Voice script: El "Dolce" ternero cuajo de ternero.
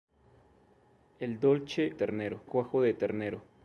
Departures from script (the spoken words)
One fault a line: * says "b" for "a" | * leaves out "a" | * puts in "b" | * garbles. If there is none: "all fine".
all fine